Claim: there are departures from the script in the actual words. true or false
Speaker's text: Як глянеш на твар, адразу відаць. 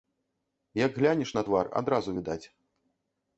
false